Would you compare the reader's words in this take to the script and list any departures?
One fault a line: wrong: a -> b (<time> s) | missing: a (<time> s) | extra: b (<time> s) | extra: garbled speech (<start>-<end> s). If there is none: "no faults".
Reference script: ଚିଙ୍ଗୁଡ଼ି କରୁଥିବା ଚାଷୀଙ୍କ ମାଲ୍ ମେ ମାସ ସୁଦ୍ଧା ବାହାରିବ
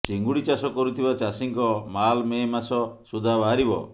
extra: ଚାଷ (0.4 s)